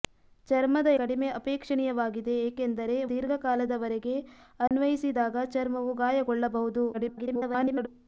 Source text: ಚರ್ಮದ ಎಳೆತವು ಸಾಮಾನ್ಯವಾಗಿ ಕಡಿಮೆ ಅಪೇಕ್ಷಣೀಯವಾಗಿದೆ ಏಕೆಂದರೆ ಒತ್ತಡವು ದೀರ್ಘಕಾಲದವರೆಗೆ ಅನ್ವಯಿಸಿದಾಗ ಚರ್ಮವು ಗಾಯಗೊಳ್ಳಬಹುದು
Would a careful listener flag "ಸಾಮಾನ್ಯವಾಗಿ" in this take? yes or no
yes